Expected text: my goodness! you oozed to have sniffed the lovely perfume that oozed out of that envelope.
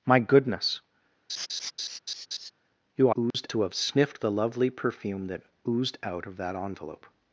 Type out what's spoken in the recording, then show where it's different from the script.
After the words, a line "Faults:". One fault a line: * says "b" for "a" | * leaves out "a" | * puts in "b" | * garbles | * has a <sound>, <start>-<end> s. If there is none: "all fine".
my goodness! you oozed to have sniffed the lovely perfume that oozed out of that envelope.
Faults:
* has a laugh, 1.3-2.5 s
* has a dropout, 3.3-3.3 s